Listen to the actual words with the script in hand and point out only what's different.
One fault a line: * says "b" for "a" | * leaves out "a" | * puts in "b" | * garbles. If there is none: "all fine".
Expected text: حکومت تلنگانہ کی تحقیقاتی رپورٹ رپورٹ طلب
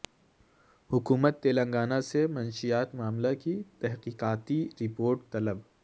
* puts in "سے منشیات معاملہ"
* leaves out "رپورٹ"